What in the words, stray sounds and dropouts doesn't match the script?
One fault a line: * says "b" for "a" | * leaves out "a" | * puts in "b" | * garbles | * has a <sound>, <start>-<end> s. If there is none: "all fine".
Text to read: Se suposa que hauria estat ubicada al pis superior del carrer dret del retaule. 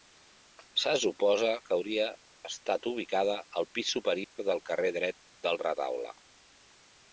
* has a dropout, 4.2-4.4 s